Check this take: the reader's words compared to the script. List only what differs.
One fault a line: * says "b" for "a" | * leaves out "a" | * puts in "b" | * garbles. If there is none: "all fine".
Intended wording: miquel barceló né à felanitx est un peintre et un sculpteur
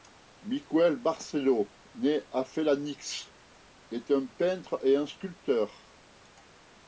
all fine